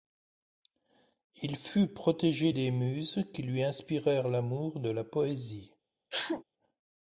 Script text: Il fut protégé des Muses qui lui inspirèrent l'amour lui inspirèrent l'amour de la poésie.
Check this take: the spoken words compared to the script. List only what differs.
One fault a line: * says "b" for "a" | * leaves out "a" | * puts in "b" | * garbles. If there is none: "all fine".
* leaves out "lui inspirèrent l'amour"